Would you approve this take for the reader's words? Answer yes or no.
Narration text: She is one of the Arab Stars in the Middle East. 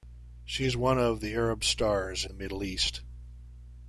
no